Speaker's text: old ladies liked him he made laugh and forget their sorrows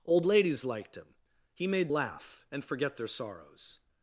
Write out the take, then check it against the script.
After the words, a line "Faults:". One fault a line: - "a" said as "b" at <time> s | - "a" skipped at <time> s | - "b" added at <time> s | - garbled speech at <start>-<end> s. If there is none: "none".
old ladies liked him he made laugh and forget their sorrows
Faults:
none